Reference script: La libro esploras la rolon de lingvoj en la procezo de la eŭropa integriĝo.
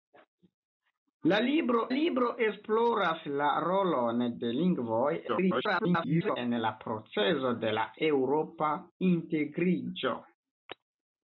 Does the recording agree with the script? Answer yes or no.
no